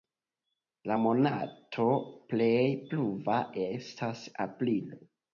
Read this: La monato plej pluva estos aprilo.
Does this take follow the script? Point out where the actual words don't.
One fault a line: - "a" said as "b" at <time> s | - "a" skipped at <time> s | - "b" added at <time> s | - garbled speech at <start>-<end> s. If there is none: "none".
- "estos" said as "estas" at 3.6 s